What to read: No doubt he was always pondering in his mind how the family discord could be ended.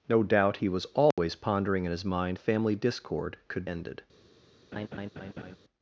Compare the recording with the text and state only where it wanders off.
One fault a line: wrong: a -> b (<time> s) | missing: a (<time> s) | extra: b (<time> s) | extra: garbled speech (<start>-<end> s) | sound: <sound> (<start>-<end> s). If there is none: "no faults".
sound: dropout (1.1-1.2 s)
missing: how the (2.4 s)
missing: be (3.6 s)
sound: laugh (4.7-5.6 s)